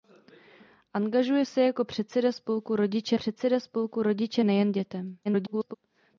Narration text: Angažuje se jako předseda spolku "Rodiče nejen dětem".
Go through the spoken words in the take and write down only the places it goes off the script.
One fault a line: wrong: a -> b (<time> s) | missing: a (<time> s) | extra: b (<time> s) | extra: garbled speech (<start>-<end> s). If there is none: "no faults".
extra: předseda spolku Rodiče (3.1 s)
extra: garbled speech (5.2-5.7 s)